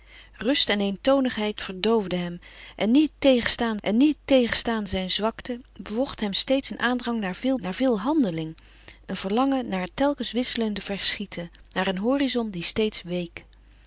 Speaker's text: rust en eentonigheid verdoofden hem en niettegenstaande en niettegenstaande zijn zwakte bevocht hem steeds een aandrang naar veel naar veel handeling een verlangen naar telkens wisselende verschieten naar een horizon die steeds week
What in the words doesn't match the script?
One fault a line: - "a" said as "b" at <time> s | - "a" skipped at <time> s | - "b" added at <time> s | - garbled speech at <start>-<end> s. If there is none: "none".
none